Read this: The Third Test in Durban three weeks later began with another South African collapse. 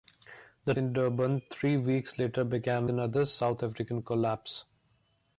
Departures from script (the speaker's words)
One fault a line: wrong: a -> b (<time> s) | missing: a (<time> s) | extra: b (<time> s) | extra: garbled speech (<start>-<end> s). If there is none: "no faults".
missing: Third Test (0.7 s)
missing: with (2.9 s)